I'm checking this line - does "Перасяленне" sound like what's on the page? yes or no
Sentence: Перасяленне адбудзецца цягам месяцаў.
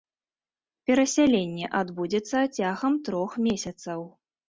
yes